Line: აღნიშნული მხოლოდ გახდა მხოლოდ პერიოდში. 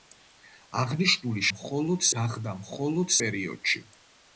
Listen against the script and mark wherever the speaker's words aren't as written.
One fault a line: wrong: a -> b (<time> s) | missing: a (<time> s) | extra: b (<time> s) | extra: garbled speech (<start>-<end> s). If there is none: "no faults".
no faults